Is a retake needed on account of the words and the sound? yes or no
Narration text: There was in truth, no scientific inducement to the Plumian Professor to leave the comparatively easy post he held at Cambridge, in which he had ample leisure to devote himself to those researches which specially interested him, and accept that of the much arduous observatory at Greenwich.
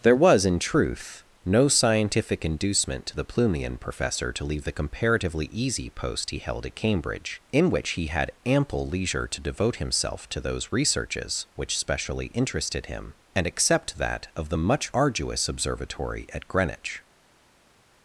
no